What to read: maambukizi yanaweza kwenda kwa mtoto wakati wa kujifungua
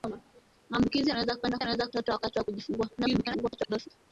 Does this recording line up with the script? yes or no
no